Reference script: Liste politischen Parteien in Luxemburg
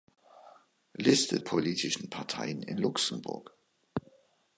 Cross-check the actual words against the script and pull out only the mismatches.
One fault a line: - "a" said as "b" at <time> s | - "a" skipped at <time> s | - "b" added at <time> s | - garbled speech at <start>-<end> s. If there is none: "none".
none